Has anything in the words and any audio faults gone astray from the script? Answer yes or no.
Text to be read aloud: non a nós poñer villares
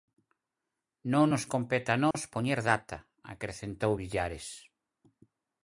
yes